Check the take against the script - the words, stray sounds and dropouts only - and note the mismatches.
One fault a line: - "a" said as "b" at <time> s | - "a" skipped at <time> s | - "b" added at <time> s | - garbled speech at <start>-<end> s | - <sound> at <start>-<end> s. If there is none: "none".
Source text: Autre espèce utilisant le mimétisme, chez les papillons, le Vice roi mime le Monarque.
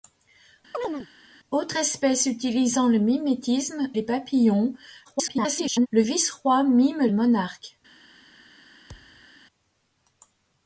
- chirp at 0.7-1.1 s
- "chez" skipped at 3.9 s
- garbled speech at 5.0-5.9 s
- "le" skipped at 7.1 s
- thud at 8.9-9.3 s